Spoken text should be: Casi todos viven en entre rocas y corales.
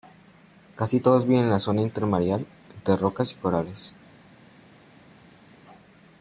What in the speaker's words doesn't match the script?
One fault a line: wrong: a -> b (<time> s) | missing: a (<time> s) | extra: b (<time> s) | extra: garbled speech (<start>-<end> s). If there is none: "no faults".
extra: la zona intermareal (1.5 s)